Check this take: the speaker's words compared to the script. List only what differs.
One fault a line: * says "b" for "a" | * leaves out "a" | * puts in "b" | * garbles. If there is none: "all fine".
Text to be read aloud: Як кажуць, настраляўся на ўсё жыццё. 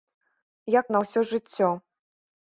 * leaves out "кажуць настраляўся"